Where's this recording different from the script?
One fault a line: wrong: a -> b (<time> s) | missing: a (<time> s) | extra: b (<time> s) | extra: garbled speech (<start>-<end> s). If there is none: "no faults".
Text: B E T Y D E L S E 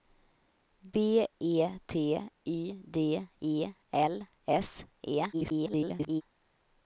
extra: garbled speech (5.3-6.2 s)